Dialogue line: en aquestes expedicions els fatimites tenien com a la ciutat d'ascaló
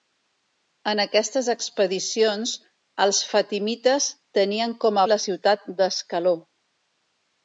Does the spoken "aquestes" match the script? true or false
true